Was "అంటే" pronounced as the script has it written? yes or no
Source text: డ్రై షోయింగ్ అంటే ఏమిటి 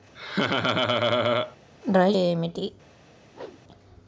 no